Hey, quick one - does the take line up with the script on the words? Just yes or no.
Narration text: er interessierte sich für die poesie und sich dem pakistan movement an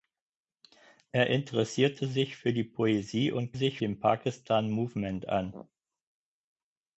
yes